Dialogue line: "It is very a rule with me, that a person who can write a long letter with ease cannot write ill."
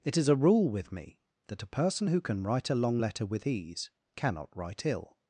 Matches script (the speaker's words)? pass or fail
fail